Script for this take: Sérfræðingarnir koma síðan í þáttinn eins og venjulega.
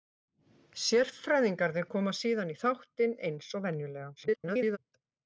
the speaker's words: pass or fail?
fail